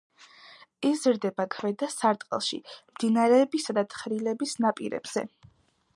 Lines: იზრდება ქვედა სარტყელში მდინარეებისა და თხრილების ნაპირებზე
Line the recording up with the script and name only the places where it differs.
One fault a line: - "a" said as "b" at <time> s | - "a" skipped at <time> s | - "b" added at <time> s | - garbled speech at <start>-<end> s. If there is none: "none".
none